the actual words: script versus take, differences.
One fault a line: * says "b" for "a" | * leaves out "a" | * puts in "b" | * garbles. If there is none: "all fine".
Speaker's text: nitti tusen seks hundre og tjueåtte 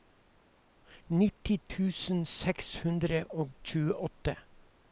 all fine